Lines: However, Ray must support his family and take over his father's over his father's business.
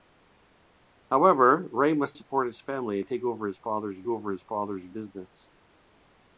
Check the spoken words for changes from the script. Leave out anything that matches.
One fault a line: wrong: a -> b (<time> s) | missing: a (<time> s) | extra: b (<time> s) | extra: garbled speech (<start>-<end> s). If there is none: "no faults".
no faults